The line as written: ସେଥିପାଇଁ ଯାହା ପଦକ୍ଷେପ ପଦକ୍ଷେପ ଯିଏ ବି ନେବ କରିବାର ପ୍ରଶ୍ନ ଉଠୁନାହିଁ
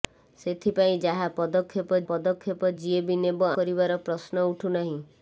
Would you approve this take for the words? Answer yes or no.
yes